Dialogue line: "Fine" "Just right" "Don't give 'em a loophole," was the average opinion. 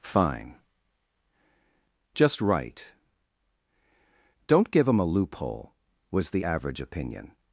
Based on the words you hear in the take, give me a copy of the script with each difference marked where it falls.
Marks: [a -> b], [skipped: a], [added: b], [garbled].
"Fine" "Just right" "Don't give 'em a loophole," was the average opinion.